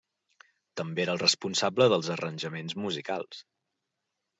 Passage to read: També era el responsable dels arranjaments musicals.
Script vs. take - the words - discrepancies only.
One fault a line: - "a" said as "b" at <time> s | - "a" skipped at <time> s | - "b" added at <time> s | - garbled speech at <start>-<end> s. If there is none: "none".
none